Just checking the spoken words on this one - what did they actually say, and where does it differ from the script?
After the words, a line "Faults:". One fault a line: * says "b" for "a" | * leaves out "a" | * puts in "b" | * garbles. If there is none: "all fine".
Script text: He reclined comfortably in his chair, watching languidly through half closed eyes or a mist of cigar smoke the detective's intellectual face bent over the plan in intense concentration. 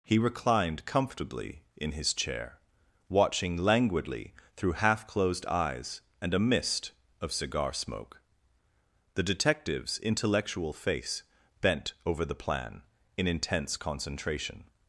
He reclined comfortably in his chair, watching languidly through half closed eyes and a mist of cigar smoke the detective's intellectual face bent over the plan in intense concentration.
Faults:
* says "and" for "or"